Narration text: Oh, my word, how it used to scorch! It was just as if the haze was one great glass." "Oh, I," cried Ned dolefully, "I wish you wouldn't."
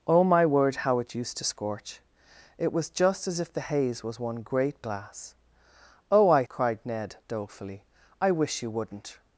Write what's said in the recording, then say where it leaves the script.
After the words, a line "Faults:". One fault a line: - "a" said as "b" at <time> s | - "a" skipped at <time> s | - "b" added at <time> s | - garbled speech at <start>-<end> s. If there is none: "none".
Oh, my word, how it used to scorch! It was just as if the haze was one great glass." "Oh, I," cried Ned dolefully, "I wish you wouldn't."
Faults:
none